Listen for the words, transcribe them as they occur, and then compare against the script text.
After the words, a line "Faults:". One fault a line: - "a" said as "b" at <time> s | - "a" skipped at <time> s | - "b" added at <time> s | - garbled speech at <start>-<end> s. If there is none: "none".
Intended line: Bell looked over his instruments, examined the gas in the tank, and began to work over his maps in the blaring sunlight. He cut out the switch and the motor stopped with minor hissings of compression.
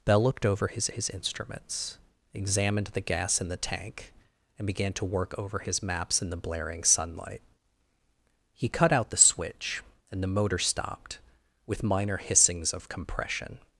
Bell looked over his his instruments, examined the gas in the tank, and began to work over his maps in the blaring sunlight. He cut out the switch and the motor stopped with minor hissings of compression.
Faults:
- "his" added at 0.9 s